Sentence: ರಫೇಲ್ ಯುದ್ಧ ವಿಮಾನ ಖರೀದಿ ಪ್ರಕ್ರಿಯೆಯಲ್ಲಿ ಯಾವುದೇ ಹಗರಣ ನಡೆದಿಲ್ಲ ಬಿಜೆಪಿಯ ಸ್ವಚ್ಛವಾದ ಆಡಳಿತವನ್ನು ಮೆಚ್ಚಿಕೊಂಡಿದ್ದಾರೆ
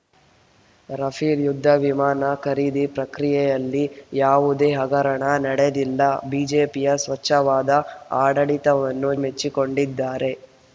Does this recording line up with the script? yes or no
yes